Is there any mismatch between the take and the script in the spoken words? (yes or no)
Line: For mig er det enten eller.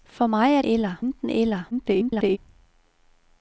yes